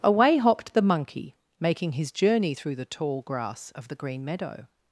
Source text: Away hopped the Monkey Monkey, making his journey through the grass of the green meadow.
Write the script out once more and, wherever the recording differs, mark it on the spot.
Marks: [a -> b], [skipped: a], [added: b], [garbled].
Away hopped the Monkey [skipped: Monkey,] making his journey through the [added: tall] grass of the green meadow.